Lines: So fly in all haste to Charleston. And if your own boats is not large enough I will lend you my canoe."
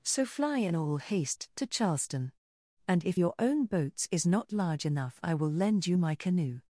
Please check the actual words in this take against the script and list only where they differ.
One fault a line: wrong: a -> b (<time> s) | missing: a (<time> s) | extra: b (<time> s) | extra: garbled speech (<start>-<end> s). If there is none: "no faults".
no faults